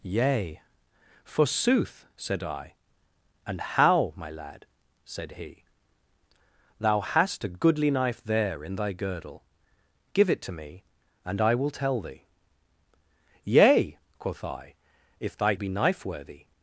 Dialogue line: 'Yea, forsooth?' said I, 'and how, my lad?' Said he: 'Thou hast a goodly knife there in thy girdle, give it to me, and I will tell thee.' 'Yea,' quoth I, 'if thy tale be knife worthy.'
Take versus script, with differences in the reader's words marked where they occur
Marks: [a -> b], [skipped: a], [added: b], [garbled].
'Yea, forsooth?' said I, 'and how, my lad?' Said he: 'Thou hast a goodly knife there in thy girdle, give it to me, and I will tell thee.' 'Yea,' quoth I, 'if thy [skipped: tale] be knife worthy.'